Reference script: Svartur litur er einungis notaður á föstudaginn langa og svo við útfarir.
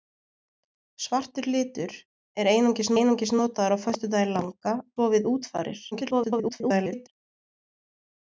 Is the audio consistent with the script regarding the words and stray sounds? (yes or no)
no